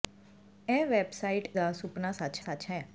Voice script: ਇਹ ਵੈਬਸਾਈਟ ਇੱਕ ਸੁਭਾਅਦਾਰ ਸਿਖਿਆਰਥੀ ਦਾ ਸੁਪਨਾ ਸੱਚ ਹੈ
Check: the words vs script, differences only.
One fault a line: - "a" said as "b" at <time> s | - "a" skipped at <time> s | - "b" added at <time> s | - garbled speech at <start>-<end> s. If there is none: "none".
- "ਇੱਕ ਸੁਭਾਅਦਾਰ ਸਿਖਿਆਰਥੀ" skipped at 1.5 s
- "ਸੱਚ" added at 2.4 s